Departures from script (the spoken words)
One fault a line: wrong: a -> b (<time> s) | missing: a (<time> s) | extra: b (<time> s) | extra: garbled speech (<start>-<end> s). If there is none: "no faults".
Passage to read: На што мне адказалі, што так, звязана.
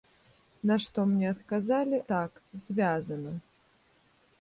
missing: што (2.0 s)